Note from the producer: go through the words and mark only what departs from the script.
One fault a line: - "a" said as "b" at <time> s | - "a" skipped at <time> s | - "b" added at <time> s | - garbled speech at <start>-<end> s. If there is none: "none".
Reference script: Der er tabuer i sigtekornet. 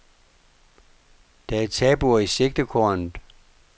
none